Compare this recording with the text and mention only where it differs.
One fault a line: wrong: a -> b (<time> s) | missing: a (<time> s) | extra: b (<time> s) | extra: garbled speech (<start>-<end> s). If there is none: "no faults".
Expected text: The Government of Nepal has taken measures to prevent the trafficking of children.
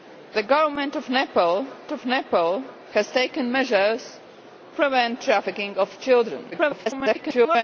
extra: of Nepal (1.9 s)
missing: to (4.2 s)
extra: garbled speech (6.5-7.6 s)